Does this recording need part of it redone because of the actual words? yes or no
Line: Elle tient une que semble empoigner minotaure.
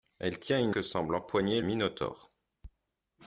no